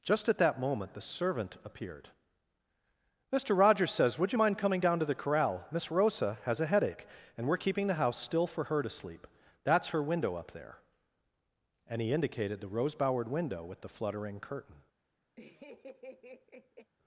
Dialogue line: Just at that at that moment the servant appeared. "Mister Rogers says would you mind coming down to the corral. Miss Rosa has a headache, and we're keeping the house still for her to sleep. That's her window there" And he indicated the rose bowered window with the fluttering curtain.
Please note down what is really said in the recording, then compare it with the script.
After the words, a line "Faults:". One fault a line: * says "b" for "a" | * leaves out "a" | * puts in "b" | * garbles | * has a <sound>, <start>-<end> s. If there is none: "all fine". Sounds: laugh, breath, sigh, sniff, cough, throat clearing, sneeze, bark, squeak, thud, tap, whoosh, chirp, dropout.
Just at that moment the servant appeared. "Mister Rogers says would you mind coming down to the corral. Miss Rosa has a headache, and we're keeping the house still for her to sleep. That's her window up there" And he indicated the rose bowered window with the fluttering curtain.
Faults:
* leaves out "at that"
* puts in "up"
* has a laugh, 15.4-16.9 s